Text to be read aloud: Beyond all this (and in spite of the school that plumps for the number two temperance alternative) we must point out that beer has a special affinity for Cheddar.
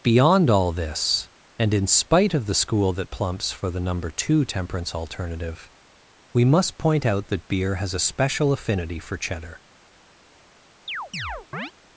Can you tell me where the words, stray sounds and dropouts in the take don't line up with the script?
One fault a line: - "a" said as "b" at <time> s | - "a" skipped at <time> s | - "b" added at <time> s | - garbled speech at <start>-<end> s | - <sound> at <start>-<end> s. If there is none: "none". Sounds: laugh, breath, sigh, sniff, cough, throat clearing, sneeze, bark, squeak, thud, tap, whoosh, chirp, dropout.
- chirp at 10.9-11.7 s